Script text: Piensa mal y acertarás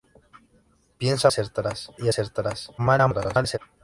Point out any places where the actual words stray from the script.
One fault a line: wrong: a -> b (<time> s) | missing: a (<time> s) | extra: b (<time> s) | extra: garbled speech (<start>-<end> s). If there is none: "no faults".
wrong: mal -> acertarás (1.3 s)
extra: garbled speech (2.8-3.6 s)